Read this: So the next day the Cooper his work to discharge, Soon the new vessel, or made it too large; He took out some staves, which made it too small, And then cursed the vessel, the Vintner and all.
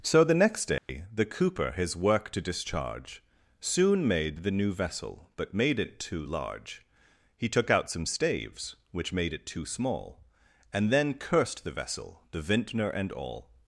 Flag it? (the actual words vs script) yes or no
yes